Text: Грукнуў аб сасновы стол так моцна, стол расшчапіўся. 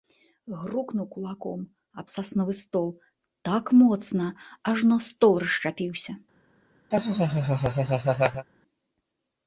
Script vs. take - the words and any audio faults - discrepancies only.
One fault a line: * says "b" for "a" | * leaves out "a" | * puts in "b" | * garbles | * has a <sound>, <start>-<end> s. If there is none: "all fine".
* puts in "кулаком"
* puts in "ажно"
* has a laugh, 6.9-8.5 s